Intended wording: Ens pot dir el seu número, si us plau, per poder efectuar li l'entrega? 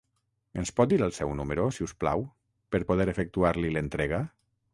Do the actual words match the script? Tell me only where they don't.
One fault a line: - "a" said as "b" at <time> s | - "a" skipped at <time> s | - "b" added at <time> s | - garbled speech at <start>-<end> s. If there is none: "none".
none